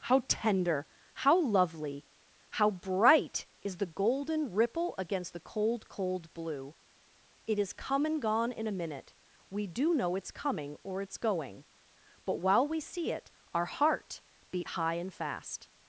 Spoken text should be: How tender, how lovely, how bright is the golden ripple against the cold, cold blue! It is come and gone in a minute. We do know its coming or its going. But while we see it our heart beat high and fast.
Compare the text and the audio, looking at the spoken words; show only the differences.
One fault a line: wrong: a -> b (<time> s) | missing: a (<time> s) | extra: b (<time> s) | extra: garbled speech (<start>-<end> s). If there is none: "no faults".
no faults